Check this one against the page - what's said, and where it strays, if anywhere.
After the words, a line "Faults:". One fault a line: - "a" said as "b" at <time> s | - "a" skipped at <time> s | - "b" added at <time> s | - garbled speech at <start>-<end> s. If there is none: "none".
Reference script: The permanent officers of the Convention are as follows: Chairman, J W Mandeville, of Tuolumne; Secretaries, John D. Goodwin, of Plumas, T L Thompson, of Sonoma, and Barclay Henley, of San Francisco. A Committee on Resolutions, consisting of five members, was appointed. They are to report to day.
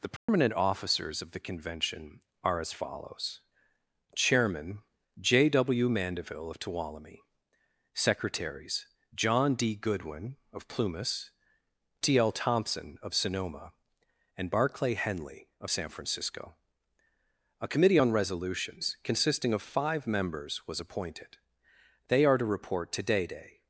The permanent officers of the Convention are as follows: Chairman, J W Mandeville, of Tuolumne; Secretaries, John D. Goodwin, of Plumas, T L Thompson, of Sonoma, and Barclay Henley, of San Francisco. A Committee on Resolutions, consisting of five members, was appointed. They are to report to day day.
Faults:
- "day" added at 23.3 s